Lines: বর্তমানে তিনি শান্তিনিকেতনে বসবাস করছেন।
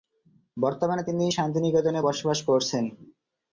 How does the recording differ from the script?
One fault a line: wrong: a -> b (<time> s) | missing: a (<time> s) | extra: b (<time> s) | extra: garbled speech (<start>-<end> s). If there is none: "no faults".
no faults